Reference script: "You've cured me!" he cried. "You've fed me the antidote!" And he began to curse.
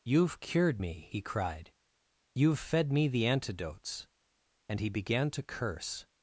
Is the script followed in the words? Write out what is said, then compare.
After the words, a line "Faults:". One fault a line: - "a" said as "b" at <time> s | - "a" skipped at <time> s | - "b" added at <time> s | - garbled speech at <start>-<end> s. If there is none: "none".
"You've cured me!" he cried. "You've fed me the antidotes!" And he began to curse.
Faults:
- "antidote" said as "antidotes" at 3.3 s